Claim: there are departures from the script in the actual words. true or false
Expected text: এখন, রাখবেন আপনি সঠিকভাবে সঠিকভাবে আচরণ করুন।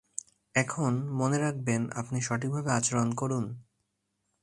true